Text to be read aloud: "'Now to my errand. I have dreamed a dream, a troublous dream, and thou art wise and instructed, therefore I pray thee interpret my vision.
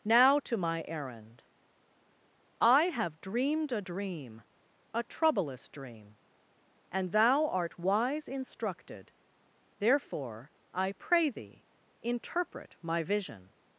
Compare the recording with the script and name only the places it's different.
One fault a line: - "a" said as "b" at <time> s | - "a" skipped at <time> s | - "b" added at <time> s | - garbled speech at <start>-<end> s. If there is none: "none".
- "and" skipped at 8.3 s